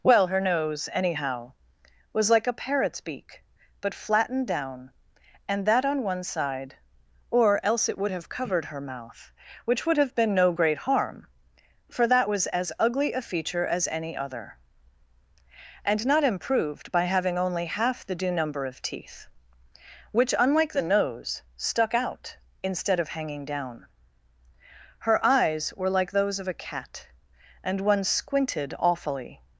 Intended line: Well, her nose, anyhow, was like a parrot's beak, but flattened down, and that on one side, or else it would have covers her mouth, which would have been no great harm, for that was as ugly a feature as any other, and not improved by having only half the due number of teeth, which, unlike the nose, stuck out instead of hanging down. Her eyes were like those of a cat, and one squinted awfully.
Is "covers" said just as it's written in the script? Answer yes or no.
no